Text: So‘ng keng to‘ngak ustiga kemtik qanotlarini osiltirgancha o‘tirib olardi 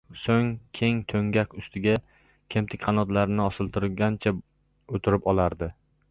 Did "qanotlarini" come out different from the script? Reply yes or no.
no